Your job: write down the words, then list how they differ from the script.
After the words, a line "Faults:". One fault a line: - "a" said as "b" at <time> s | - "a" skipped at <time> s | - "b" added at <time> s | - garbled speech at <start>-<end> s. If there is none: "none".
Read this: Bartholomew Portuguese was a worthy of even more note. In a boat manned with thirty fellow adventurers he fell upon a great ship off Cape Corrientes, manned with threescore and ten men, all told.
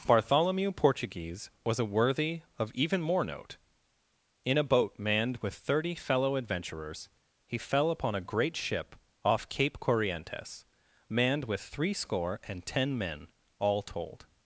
Bartholomew Portuguese was a worthy of even more note. In a boat manned with thirty fellow adventurers he fell upon a great ship off Cape Corrientes, manned with threescore and ten men, all told.
Faults:
none